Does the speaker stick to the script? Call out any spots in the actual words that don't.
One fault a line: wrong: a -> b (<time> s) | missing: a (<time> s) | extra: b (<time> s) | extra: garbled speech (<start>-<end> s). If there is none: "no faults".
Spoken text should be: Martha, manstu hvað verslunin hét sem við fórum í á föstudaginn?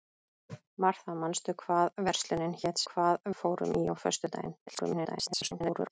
wrong: sem -> hvað (2.9 s)
extra: garbled speech (4.7-5.9 s)